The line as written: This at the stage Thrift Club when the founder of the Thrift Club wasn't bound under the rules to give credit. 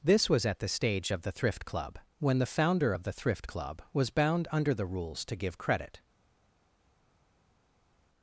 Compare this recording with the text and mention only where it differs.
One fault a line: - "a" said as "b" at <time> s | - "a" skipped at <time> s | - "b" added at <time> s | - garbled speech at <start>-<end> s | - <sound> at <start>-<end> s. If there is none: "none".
- "was" added at 0.3 s
- "of the" added at 1.1 s
- "wasn't" said as "was" at 3.9 s